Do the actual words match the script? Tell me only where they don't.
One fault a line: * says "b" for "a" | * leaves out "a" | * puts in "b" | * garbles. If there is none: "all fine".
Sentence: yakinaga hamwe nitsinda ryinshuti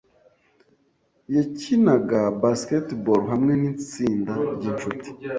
* puts in "basketball"